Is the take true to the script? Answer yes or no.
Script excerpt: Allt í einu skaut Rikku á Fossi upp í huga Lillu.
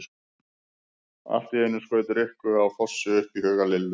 yes